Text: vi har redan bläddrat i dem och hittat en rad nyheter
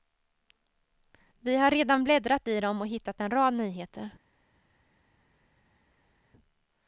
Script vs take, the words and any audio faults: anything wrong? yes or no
no